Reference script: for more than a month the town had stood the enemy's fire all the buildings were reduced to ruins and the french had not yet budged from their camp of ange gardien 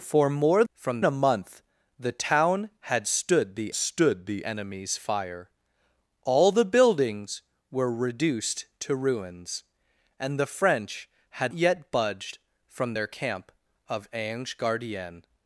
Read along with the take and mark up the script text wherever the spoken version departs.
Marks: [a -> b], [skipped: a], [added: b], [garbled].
for more [than -> from] a month the town had stood the [added: stood the] enemy's fire all the buildings were reduced to ruins and the french had [skipped: not] yet budged from their camp of ange gardien